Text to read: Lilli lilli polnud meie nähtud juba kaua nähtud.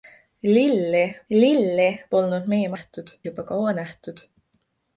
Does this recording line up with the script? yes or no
yes